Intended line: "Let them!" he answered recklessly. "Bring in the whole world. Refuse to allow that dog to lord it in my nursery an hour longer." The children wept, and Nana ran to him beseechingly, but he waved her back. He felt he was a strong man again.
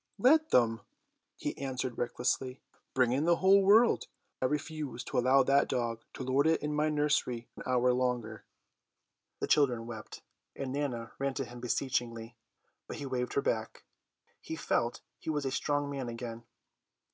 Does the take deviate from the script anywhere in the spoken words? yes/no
no